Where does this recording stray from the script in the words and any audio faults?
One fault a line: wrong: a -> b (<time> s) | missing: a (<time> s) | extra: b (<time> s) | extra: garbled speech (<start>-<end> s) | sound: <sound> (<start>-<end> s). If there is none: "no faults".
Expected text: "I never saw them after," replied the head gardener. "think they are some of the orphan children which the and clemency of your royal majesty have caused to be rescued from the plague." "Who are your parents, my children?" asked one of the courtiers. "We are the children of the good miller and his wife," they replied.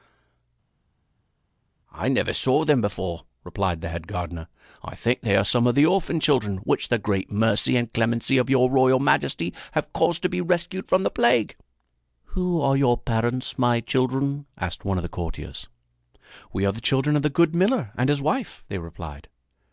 wrong: after -> before (2.8 s)
extra: I (4.8 s)
extra: great mercy (7.0 s)